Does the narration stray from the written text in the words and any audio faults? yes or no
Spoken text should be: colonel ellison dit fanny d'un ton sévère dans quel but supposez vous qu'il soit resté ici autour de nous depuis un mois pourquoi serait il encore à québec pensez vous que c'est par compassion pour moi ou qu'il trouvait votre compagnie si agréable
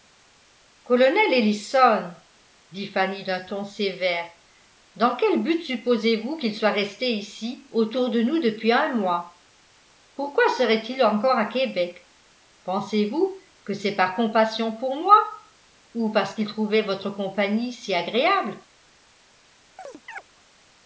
yes